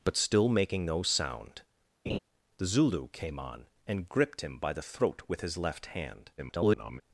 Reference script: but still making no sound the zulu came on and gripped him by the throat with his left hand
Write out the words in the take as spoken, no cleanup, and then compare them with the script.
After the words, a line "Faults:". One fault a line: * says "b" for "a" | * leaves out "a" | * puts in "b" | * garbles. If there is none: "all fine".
but still making no sound the zulu came on and gripped him by the throat with his left hand [garbled]
Faults:
* garbles